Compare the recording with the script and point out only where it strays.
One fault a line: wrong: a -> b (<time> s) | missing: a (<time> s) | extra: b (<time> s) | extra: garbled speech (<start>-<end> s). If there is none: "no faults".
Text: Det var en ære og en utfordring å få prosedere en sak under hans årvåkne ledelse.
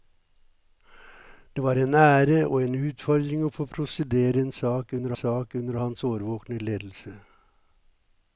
extra: sak under (5.2 s)